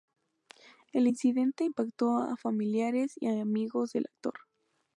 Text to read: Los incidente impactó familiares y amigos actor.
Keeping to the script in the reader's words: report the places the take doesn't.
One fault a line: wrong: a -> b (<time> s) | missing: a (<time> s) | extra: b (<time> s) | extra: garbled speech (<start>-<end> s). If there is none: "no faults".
wrong: Los -> El (0.9 s)
extra: a (2.2 s)
extra: del (3.9 s)